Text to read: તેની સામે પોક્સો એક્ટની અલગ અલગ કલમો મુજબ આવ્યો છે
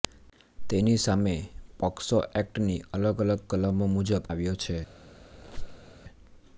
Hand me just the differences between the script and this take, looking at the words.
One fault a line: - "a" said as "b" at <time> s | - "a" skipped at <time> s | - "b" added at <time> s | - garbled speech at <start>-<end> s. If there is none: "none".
none